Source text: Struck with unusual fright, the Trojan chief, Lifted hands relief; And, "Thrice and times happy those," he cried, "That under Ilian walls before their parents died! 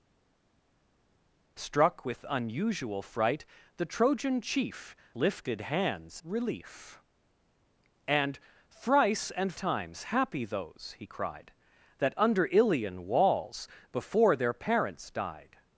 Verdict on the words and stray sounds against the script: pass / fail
pass